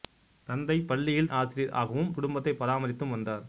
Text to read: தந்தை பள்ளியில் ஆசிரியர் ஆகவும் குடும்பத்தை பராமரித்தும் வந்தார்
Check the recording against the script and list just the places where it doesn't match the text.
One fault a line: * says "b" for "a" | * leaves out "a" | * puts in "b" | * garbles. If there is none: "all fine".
all fine